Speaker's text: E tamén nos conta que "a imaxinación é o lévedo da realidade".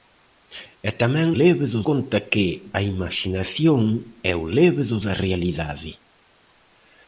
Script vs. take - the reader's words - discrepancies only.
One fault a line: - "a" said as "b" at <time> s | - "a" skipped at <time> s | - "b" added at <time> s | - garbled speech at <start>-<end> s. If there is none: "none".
- "nos" said as "lévedo" at 1.4 s